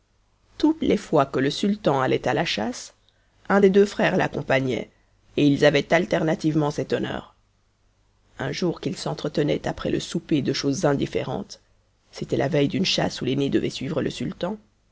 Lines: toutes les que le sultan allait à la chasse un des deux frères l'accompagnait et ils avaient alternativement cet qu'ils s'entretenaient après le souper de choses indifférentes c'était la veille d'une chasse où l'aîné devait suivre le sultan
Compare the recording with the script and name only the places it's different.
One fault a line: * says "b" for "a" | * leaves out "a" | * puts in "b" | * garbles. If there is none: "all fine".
* puts in "fois"
* puts in "honneur un jour"